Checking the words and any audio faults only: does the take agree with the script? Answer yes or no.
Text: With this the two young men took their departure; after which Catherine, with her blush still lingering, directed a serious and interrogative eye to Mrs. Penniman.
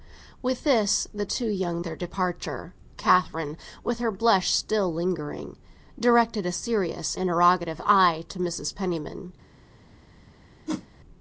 no